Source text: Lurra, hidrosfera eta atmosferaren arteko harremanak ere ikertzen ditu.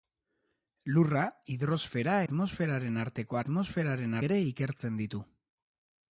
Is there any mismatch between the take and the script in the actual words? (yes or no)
yes